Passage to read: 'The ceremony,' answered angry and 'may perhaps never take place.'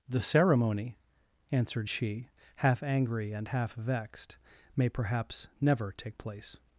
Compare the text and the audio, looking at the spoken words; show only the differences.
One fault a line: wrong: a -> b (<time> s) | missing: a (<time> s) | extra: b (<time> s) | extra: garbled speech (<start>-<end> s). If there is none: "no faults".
extra: she half (1.9 s)
extra: half vexed (3.5 s)